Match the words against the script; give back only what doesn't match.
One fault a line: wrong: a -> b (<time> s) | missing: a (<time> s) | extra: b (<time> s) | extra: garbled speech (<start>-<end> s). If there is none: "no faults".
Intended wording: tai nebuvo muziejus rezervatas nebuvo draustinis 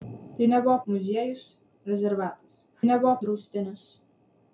no faults